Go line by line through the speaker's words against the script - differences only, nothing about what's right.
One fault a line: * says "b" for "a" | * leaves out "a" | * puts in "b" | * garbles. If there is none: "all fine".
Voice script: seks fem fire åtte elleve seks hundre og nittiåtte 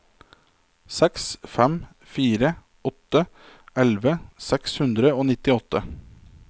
all fine